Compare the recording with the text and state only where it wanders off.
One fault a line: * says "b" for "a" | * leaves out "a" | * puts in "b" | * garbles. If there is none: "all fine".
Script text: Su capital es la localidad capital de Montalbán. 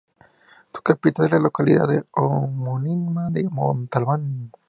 * says "homónima" for "capital"